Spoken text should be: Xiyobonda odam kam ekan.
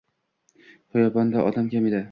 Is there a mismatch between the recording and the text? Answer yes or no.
yes